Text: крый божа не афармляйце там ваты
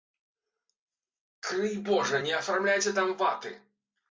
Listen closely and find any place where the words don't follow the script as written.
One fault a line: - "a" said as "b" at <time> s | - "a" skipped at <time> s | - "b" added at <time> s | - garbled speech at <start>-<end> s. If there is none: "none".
none